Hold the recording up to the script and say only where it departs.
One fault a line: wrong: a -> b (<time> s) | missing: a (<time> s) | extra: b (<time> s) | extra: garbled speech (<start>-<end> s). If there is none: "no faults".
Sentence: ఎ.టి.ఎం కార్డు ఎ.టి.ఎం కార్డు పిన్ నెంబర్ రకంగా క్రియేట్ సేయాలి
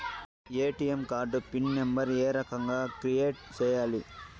missing: ఎ.టి.ఎం కార్డు (1.4 s)
extra: ఏ (2.2 s)